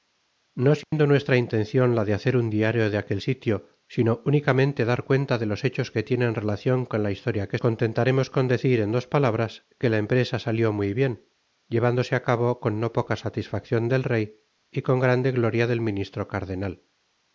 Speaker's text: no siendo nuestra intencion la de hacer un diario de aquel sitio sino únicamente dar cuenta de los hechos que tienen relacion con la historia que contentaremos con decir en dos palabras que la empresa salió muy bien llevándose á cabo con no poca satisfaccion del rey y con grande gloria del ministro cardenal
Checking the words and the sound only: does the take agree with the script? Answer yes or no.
no